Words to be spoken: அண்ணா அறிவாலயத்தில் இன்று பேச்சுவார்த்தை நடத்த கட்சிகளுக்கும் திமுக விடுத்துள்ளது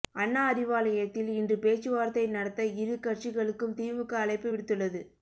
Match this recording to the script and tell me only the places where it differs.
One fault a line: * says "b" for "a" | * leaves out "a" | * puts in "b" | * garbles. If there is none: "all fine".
* puts in "இரு"
* puts in "அழைப்பு"